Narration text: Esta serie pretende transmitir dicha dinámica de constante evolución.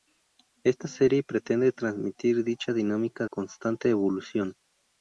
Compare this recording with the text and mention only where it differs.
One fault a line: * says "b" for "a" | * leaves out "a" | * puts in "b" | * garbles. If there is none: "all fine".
* leaves out "de"